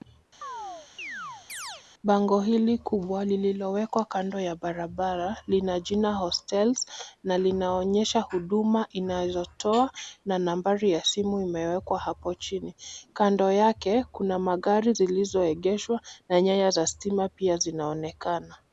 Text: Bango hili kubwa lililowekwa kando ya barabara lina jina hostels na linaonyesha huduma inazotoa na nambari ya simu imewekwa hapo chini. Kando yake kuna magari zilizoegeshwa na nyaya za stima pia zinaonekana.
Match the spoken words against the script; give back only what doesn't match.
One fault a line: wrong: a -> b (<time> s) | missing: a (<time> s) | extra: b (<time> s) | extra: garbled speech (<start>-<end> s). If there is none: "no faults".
no faults